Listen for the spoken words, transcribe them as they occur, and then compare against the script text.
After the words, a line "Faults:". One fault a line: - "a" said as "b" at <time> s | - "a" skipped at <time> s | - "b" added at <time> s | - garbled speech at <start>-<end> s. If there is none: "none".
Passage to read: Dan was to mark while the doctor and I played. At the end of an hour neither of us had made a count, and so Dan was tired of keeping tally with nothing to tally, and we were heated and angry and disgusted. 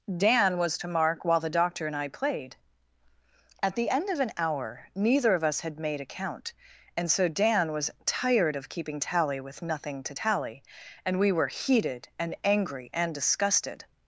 Dan was to mark while the doctor and I played. At the end of an hour neither of us had made a count, and so Dan was tired of keeping tally with nothing to tally, and we were heated and angry and disgusted.
Faults:
none